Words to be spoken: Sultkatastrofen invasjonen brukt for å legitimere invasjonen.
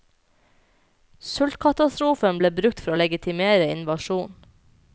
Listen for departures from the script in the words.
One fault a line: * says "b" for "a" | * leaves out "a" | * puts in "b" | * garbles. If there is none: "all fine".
* says "ble" for "invasjonen"